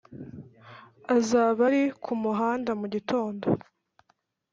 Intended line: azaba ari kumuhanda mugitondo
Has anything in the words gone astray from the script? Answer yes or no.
no